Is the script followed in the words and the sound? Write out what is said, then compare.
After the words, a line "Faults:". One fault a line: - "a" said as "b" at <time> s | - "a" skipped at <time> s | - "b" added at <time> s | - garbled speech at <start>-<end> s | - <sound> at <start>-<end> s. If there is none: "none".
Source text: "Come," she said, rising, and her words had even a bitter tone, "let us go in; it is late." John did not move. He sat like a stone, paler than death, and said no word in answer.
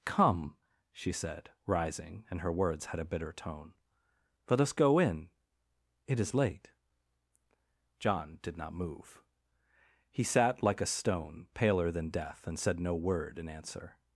"Come," she said, rising, and her words had a bitter tone, "let us go in; it is late." John did not move. He sat like a stone, paler than death, and said no word in answer.
Faults:
- "even" skipped at 3.0 s